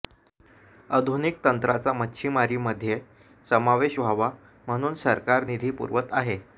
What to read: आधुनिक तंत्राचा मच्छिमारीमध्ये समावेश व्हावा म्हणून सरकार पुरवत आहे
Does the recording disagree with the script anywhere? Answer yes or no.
yes